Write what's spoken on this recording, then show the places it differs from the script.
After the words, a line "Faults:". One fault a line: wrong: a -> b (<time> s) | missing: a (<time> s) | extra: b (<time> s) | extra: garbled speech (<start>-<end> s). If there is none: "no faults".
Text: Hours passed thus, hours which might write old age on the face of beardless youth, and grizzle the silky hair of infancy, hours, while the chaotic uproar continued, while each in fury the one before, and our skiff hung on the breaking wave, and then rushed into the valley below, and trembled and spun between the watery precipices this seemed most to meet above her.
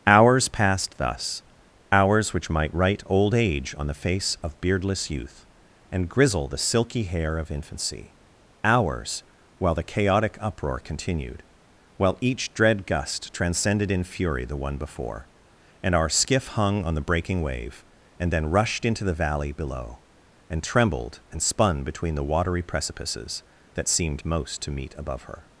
Hours passed thus, hours which might write old age on the face of beardless youth, and grizzle the silky hair of infancy, hours, while the chaotic uproar continued, while each dread gust transcended in fury the one before, and our skiff hung on the breaking wave, and then rushed into the valley below, and trembled and spun between the watery precipices that seemed most to meet above her.
Faults:
extra: dread gust transcended (12.6 s)
wrong: this -> that (23.8 s)